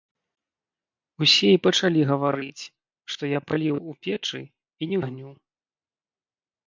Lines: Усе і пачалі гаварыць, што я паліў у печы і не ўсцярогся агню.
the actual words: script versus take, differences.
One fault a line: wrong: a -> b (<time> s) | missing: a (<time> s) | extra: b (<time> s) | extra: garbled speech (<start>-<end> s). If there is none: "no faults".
missing: ўсцярогся (5.0 s)